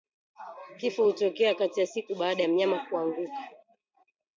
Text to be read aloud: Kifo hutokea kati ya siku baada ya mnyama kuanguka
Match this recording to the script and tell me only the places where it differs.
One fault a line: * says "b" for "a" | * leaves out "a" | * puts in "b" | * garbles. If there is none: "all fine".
all fine